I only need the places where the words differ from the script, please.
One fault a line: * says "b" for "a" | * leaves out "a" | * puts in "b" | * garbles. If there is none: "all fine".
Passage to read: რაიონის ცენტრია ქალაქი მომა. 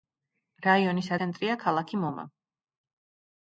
all fine